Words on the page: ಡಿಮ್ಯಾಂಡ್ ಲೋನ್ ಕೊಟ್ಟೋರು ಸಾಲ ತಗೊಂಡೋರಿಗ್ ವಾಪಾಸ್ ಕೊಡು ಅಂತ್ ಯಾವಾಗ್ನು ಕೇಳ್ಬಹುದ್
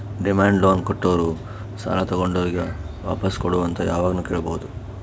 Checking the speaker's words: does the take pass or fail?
pass